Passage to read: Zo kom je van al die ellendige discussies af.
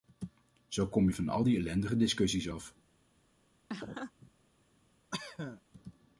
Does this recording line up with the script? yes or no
yes